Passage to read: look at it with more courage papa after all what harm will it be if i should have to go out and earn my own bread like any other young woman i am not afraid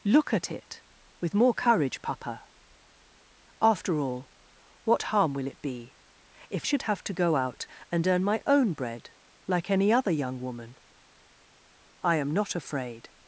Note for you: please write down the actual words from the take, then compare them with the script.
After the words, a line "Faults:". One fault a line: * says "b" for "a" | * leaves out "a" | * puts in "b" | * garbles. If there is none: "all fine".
look at it with more courage papa after all what harm will it be if should have to go out and earn my own bread like any other young woman i am not afraid
Faults:
* leaves out "i"